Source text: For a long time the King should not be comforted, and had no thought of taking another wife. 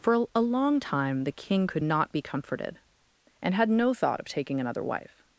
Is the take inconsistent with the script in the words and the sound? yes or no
yes